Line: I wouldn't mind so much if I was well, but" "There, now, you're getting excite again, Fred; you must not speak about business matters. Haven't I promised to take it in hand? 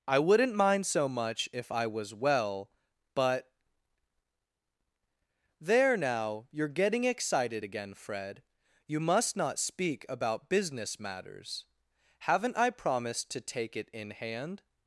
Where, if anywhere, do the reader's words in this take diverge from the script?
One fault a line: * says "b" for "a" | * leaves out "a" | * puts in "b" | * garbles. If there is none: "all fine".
* says "excited" for "excite"